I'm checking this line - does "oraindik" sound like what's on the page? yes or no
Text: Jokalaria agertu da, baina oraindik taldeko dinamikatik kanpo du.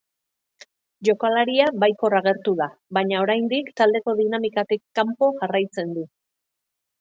yes